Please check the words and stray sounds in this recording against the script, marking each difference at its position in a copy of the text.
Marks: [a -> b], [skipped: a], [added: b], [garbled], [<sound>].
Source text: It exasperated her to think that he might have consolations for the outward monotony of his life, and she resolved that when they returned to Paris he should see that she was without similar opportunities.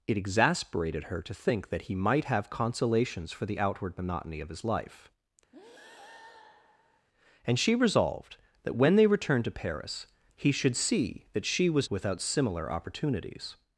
It exasperated her to think that he might have consolations for the outward monotony of his life, [breath] and she resolved that when they returned to Paris he should see that she was without similar opportunities.